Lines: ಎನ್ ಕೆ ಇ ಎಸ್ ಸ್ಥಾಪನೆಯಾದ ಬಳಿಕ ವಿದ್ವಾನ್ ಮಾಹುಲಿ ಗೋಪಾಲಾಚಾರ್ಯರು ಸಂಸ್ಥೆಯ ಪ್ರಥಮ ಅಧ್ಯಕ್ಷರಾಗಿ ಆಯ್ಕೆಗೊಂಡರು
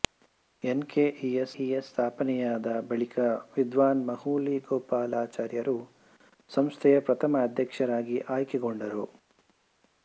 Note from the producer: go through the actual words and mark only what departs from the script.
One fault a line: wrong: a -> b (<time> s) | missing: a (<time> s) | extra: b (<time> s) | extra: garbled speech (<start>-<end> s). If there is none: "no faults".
extra: ಇ ಎಸ್ (1.6 s)